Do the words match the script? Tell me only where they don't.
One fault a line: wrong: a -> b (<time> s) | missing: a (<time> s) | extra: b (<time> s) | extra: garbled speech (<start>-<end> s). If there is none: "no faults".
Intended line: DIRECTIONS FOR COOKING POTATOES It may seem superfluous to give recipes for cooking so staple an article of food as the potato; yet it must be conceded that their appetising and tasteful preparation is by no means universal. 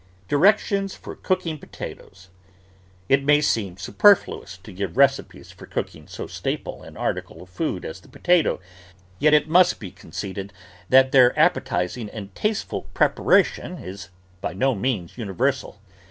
no faults